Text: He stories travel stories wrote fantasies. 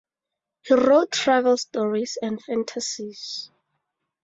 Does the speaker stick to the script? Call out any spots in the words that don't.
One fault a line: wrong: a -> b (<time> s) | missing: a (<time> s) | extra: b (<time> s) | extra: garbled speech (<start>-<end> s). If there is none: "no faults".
wrong: stories -> wrote (0.7 s)
wrong: wrote -> and (2.2 s)